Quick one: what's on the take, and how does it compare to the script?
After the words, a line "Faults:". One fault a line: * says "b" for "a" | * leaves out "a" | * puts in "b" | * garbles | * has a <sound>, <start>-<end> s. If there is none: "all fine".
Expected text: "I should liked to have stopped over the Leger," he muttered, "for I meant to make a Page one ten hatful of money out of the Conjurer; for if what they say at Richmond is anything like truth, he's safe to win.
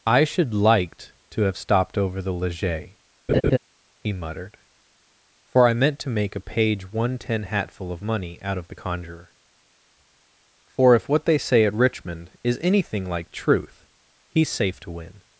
"I should liked to have stopped over the Leger," he muttered, "for I meant to make a Page one ten hatful of money out of the Conjurer; for if what they say at Richmond is anything like truth, he's safe to win.
Faults:
* has a laugh, 3.3-3.6 s